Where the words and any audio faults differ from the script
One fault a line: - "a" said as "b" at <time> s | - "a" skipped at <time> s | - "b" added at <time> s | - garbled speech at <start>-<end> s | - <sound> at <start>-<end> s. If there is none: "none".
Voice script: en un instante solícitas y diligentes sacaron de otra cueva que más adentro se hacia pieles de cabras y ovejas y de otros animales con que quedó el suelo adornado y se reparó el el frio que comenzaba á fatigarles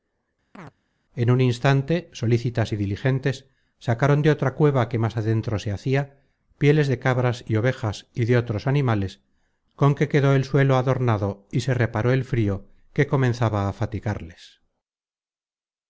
- chirp at 0.5-0.7 s
- "el" skipped at 12.3 s